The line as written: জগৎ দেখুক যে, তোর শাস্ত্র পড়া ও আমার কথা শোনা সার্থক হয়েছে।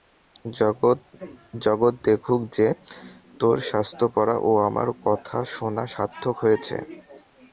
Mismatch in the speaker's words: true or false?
false